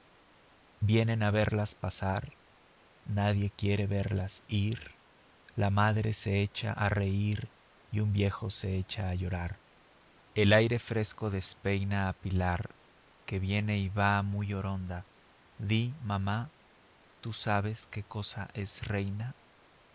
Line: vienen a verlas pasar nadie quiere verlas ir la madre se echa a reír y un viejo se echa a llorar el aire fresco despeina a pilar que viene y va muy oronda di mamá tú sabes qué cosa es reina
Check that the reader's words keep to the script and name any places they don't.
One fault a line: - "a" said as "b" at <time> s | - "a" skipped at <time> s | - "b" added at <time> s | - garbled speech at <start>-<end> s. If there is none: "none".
none